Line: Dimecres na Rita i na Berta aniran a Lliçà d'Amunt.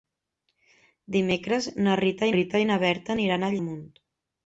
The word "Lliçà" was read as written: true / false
false